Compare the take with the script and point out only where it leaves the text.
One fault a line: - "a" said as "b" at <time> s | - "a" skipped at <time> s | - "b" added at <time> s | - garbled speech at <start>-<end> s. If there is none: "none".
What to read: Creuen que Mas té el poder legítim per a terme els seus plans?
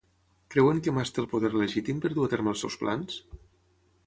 - "dur" added at 2.2 s